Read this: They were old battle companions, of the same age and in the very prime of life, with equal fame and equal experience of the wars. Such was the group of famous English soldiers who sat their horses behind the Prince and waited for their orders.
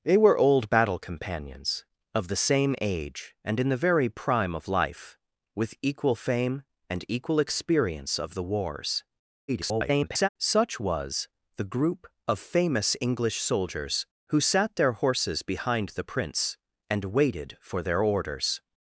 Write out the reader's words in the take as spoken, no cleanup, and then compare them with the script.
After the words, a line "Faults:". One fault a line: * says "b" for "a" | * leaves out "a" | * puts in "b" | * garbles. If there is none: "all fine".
They were old battle companions, of the same age and in the very prime of life, with equal fame and equal experience of the wars. [garbled] Such was the group of famous English soldiers who sat their horses behind the Prince and waited for their orders.
Faults:
* garbles